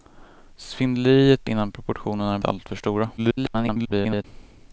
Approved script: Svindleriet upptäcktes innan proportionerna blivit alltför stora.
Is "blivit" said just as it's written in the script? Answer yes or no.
no